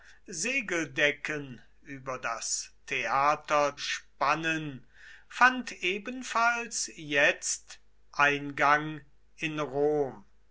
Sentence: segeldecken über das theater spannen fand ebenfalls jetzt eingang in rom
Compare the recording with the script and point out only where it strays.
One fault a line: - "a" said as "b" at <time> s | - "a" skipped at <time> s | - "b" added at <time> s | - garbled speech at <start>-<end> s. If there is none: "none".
none